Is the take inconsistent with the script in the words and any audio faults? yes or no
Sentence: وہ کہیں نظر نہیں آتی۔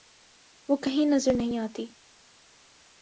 no